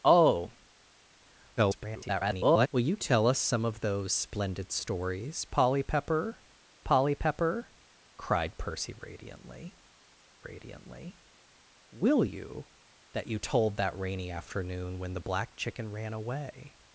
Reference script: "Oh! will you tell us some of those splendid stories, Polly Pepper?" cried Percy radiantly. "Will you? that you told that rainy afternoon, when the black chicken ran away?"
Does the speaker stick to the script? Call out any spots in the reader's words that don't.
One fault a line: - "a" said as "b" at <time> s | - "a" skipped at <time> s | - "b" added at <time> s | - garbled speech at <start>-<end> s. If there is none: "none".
- garbled speech at 1.6-2.7 s
- "Polly Pepper" added at 6.8 s
- "radiantly" added at 10.4 s